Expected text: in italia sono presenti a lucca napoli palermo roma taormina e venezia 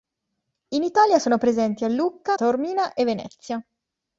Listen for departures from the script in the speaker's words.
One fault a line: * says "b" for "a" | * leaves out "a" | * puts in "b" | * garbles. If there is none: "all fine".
* leaves out "napoli palermo roma"